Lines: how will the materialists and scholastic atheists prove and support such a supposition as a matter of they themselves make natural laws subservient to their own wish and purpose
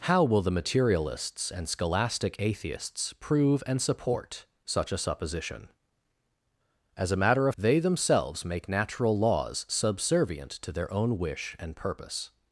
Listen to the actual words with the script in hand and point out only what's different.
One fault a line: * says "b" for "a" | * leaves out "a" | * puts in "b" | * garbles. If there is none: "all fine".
all fine